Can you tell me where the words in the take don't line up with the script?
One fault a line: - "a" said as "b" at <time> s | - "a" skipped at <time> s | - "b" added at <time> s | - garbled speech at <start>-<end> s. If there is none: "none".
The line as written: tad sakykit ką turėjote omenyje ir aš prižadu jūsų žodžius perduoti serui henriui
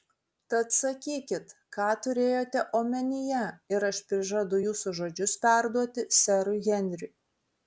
none